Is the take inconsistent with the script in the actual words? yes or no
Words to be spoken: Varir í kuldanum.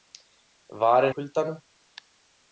no